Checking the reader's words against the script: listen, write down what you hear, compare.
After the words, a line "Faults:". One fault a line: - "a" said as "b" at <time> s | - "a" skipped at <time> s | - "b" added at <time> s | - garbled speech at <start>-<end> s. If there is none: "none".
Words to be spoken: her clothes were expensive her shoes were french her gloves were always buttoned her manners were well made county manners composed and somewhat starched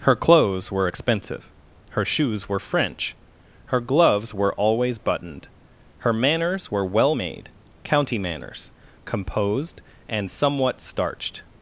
her clothes were expensive her shoes were french her gloves were always buttoned her manners were well made county manners composed and somewhat starched
Faults:
none